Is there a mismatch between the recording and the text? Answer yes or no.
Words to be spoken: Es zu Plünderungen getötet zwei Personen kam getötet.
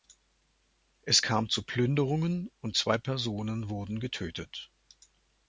yes